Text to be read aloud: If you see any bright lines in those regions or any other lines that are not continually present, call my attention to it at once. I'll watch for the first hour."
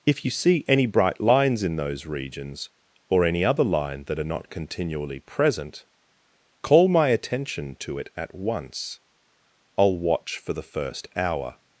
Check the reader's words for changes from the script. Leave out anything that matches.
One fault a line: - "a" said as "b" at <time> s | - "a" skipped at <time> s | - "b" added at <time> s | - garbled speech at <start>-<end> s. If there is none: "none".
- "lines" said as "line" at 3.6 s